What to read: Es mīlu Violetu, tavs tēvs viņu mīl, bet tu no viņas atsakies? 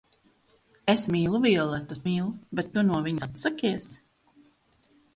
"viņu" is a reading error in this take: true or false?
true